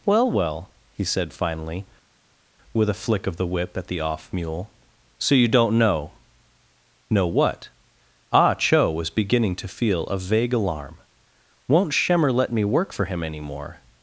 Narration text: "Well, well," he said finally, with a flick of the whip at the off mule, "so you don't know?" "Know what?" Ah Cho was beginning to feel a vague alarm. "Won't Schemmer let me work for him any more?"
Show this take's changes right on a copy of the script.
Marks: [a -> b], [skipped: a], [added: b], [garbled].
"Well, well," he said finally, with a flick of the whip at the off mule, "so you don't know?" "Know what?" Ah Cho was beginning to feel a vague alarm. "Won't Schemmer let me work for him any more?"